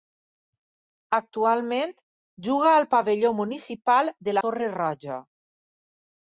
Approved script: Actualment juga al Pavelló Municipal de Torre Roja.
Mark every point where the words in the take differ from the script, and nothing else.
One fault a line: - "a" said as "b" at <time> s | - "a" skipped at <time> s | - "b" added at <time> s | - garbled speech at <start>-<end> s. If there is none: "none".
none